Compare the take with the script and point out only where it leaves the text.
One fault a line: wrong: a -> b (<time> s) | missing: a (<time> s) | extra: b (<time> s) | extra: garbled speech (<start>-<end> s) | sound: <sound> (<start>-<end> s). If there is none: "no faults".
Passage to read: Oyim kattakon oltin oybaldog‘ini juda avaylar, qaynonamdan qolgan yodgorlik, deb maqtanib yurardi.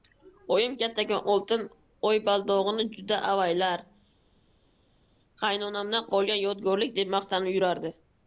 no faults